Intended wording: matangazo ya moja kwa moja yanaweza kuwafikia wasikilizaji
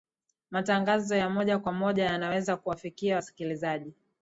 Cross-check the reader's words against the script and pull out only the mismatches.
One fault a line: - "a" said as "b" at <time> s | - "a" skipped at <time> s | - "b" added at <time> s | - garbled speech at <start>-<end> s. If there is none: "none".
none